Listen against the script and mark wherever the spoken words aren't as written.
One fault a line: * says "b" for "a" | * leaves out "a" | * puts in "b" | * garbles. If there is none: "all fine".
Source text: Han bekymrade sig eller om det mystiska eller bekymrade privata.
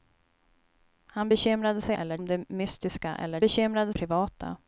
all fine